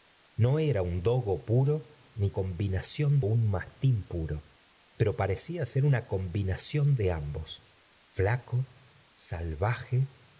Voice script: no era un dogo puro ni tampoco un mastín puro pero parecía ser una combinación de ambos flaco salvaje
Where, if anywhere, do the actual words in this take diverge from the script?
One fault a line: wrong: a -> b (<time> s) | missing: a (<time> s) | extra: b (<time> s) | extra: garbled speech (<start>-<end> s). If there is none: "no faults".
wrong: tampoco -> combinación (2.3 s)